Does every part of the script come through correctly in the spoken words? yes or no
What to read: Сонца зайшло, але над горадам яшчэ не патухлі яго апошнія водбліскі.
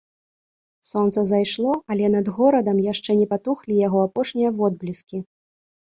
yes